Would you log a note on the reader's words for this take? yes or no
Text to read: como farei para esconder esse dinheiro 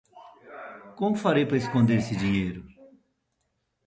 no